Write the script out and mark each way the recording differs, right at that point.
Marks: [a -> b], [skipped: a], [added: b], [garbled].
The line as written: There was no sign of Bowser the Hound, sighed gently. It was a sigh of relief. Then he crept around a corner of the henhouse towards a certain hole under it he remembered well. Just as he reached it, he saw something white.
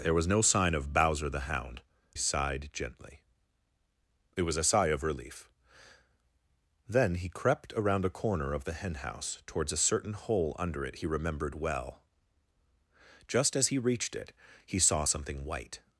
There was no sign of Bowser the Hound, sighed gently. It was a sigh of relief. Then he crept around a corner of the henhouse towards a certain hole under it he remembered well. Just as he reached it, he saw something white.